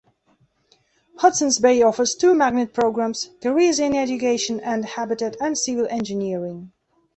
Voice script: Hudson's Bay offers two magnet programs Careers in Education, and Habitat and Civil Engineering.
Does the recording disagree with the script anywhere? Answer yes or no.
no